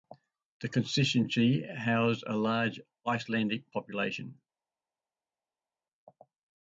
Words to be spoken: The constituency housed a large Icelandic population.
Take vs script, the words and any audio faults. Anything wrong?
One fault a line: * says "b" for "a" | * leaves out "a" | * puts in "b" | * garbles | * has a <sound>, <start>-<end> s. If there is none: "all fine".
all fine